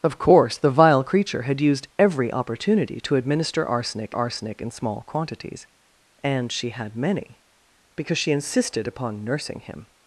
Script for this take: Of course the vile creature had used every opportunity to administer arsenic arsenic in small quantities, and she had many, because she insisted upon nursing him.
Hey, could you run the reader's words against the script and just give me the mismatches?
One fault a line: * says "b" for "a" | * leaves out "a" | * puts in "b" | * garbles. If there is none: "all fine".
all fine